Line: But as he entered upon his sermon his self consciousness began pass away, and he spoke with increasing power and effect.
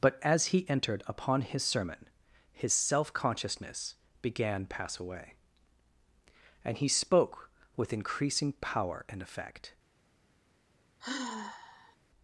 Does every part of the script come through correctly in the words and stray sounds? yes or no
no